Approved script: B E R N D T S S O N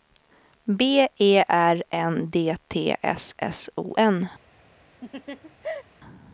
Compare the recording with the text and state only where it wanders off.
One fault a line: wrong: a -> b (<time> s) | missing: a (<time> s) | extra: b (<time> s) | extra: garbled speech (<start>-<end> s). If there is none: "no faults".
no faults